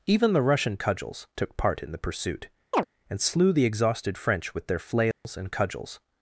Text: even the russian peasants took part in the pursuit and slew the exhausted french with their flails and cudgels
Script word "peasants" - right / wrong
wrong